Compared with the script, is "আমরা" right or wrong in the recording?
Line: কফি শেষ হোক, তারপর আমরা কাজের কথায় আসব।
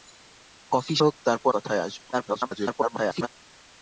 wrong